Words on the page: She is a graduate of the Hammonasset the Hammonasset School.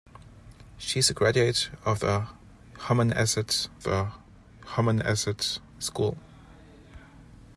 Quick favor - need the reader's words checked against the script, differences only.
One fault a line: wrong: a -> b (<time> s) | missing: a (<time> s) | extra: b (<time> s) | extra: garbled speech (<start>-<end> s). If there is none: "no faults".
no faults